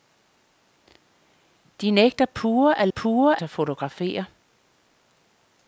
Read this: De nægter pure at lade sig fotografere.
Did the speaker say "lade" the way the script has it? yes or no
no